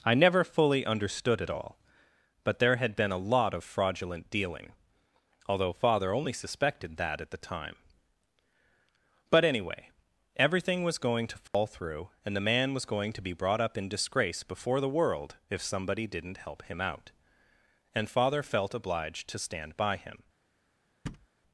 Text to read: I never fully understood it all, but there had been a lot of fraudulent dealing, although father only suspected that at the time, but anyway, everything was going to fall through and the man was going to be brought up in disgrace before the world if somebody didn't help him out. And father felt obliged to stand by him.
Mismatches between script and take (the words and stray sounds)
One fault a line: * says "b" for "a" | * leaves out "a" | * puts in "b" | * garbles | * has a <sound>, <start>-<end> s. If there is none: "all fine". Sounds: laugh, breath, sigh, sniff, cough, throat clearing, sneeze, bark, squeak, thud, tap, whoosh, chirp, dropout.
* has a dropout, 11.5-11.5 s
* has a thud, 21.1-21.3 s